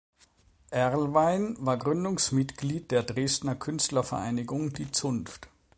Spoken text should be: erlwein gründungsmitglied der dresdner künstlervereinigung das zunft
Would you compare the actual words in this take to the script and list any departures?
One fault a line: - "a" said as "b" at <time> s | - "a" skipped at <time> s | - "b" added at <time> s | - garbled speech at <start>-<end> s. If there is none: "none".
- "war" added at 1.6 s
- "das" said as "die" at 4.7 s